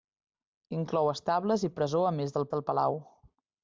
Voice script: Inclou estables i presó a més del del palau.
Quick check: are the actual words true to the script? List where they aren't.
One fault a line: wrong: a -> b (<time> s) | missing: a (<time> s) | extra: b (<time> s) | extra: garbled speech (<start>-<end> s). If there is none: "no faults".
no faults